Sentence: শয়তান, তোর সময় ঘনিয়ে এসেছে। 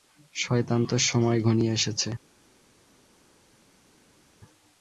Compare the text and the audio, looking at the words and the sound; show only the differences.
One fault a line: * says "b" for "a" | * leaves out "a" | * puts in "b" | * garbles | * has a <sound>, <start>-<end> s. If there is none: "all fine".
all fine